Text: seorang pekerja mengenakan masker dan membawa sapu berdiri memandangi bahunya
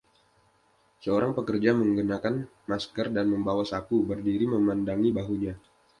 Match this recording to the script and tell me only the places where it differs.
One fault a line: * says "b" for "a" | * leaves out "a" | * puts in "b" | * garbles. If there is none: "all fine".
all fine